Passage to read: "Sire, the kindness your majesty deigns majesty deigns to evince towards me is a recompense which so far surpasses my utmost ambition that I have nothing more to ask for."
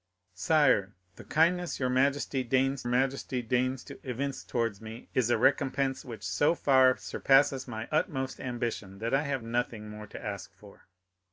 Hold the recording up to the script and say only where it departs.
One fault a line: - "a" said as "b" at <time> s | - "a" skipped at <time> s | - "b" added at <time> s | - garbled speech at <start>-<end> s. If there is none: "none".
none